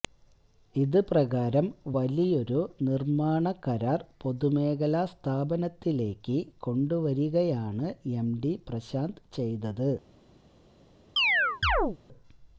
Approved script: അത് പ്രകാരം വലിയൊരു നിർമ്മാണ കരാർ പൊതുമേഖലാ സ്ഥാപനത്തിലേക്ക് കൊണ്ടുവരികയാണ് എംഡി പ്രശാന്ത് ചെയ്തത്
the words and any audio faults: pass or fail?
fail